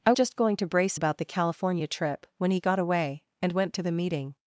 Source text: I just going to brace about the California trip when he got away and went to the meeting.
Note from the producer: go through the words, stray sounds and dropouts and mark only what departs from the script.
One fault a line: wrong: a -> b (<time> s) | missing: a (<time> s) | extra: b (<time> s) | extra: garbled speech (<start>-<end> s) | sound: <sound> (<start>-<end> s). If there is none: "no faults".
no faults